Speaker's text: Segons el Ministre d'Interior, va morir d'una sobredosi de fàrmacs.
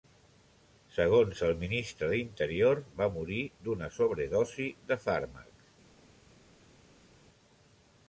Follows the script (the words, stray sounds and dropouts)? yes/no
yes